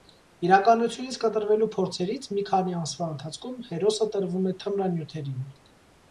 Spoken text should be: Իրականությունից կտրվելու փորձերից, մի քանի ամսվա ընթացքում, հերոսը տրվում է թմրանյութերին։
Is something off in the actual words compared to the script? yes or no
no